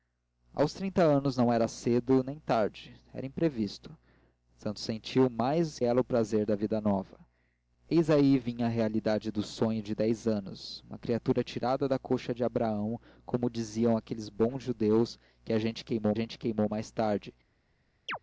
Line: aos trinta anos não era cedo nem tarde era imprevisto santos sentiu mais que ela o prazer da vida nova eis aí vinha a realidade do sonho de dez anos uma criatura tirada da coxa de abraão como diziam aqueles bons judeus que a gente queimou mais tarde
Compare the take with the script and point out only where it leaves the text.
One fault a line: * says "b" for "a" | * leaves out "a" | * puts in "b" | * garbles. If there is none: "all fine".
* leaves out "que"
* puts in "gente queimou"